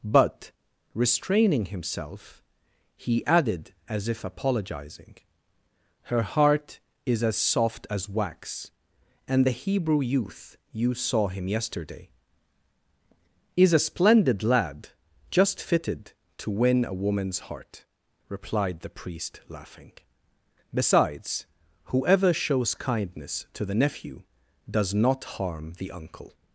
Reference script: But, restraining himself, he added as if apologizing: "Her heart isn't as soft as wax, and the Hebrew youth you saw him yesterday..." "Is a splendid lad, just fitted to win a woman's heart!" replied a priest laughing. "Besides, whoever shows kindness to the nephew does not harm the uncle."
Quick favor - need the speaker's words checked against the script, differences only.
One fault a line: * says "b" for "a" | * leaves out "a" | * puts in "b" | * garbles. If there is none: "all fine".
* says "is" for "isn't"
* says "the" for "a"